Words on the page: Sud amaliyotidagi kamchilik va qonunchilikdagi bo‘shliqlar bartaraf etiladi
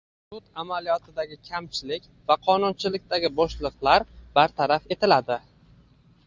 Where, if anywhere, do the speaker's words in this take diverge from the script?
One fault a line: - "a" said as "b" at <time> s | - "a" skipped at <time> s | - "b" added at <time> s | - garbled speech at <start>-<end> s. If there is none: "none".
none